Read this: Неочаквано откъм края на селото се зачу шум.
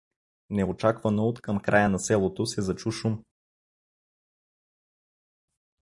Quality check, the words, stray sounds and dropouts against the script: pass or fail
pass